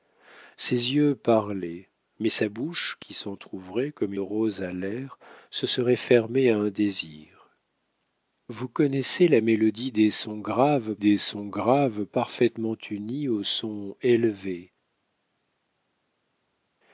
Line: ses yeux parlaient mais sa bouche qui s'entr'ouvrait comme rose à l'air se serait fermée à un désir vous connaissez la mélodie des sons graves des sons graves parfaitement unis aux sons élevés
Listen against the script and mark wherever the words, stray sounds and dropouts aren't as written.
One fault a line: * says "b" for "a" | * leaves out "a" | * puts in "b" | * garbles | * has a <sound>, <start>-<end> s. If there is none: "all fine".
all fine